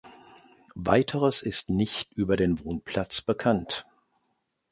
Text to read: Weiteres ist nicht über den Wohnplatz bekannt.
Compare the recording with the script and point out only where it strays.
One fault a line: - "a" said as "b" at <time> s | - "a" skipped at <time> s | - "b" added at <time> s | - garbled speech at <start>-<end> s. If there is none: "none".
none